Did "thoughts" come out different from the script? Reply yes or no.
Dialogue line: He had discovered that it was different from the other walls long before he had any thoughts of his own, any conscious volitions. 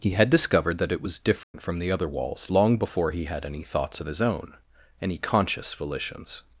no